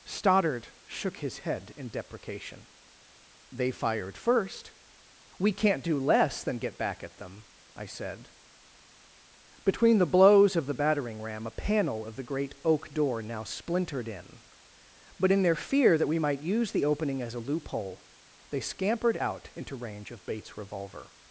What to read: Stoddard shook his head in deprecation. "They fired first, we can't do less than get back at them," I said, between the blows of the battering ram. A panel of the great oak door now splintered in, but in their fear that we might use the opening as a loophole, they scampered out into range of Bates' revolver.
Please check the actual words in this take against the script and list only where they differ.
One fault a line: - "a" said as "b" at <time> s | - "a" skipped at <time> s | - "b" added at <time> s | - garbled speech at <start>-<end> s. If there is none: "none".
none